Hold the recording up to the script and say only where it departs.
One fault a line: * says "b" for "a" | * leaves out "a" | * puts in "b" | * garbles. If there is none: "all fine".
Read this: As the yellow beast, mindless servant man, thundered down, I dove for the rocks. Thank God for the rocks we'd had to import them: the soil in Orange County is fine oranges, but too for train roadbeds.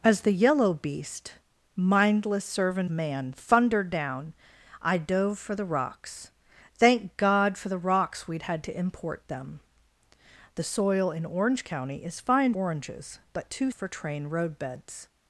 all fine